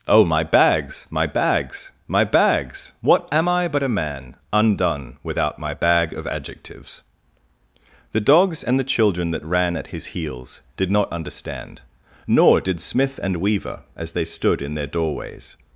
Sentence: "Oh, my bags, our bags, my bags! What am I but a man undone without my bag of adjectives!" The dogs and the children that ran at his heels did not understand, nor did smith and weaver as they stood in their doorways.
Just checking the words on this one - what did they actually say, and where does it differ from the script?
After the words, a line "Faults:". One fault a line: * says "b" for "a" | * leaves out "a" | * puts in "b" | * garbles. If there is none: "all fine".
"Oh, my bags, my bags, my bags! What am I but a man undone without my bag of adjectives!" The dogs and the children that ran at his heels did not understand, nor did smith and weaver as they stood in their doorways.
Faults:
* says "my" for "our"